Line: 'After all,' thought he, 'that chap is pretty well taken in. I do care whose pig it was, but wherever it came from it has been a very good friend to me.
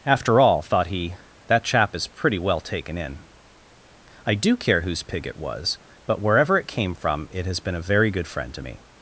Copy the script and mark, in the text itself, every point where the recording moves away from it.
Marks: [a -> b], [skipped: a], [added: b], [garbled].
'After all,' thought he, 'that chap is pretty well taken in. I do care whose pig it was, but wherever it came from it has been a very good friend to me.